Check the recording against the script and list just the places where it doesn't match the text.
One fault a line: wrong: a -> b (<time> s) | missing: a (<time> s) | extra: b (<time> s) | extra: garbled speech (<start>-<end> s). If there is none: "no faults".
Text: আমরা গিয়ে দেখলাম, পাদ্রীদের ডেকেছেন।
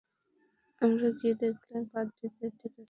no faults